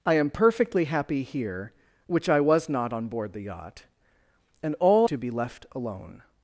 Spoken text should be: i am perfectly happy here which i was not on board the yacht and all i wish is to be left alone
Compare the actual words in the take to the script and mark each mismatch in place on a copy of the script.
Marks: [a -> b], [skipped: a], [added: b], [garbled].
i am perfectly happy here which i was not on board the yacht and all [skipped: i wish is] to be left alone